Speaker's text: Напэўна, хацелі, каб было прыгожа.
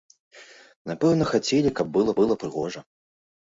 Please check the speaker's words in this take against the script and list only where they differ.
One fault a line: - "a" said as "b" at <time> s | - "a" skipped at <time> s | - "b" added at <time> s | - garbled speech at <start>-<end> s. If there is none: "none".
- "было" added at 2.2 s